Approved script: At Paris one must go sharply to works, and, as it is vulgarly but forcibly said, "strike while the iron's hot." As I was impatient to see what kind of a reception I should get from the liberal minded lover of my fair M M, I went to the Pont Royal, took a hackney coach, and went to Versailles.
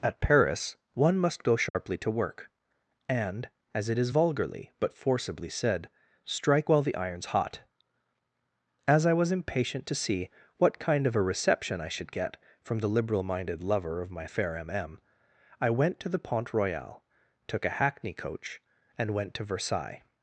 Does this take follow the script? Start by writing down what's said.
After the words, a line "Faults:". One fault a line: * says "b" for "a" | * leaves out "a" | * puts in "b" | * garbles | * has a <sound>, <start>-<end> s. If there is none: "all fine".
At Paris one must go sharply to work, and, as it is vulgarly but forcibly said, "strike while the iron's hot." As I was impatient to see what kind of a reception I should get from the liberal minded lover of my fair M M, I went to the Pont Royal, took a hackney coach, and went to Versailles.
Faults:
* has a dropout, 1.7-1.7 s
* says "work" for "works"